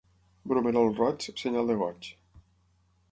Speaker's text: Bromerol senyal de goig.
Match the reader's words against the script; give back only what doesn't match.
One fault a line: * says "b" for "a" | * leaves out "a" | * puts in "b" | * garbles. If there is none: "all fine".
* puts in "roig"